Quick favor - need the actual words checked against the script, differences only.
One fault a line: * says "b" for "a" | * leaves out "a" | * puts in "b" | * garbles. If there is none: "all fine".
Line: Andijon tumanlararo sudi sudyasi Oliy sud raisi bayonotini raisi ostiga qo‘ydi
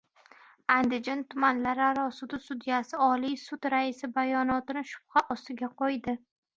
* says "shubha" for "raisi"